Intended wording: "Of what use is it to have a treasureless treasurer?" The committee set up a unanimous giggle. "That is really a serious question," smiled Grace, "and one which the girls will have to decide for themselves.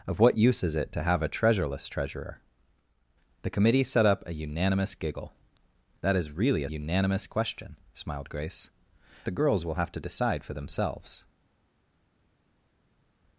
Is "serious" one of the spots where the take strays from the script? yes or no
yes